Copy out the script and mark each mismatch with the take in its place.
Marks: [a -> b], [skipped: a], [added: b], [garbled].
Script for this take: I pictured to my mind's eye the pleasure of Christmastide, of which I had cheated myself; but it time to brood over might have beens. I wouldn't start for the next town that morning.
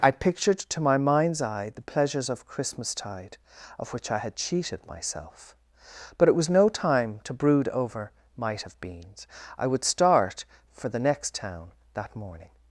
I pictured to my mind's eye the [pleasure -> pleasures] of Christmastide, of which I had cheated myself; but it [added: was no] time to brood over might have beens. I [wouldn't -> would] start for the next town that morning.